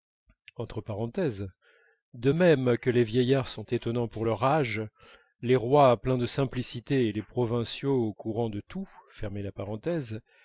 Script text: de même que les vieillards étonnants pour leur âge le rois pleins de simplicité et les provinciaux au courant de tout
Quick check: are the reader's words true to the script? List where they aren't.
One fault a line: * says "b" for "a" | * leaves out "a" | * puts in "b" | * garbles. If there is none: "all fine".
* puts in "sont"
* says "les" for "le"